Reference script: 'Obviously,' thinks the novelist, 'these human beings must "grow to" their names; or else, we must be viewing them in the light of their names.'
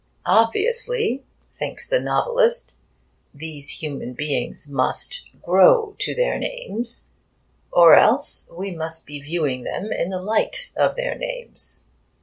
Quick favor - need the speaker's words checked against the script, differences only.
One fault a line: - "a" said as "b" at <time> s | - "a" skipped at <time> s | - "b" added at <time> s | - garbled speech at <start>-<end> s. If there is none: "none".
none